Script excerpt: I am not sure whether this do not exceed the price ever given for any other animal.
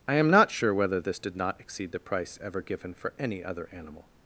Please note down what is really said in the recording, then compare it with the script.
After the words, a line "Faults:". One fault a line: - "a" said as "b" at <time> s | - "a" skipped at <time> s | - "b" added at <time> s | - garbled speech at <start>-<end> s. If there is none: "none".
I am not sure whether this did not exceed the price ever given for any other animal.
Faults:
- "do" said as "did" at 1.2 s